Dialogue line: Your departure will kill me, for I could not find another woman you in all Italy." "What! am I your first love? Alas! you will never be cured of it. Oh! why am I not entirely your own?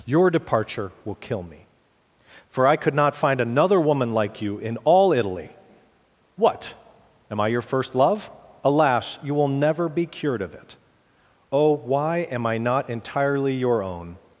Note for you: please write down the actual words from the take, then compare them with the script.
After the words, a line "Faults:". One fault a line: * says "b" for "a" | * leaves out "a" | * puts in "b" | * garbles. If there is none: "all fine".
Your departure will kill me, for I could not find another woman like you in all Italy." "What! am I your first love? Alas! you will never be cured of it. Oh! why am I not entirely your own?
Faults:
* puts in "like"